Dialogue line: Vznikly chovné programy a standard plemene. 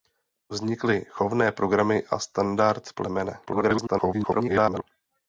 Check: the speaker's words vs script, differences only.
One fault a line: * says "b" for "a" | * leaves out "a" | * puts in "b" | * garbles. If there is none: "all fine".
* garbles